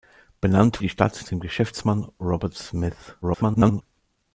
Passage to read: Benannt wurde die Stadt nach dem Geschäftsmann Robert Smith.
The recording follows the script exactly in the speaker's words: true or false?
false